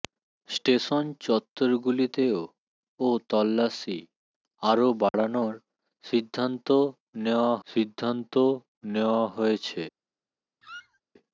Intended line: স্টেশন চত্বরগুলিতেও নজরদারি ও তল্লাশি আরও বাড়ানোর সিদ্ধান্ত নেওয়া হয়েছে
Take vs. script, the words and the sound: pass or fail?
fail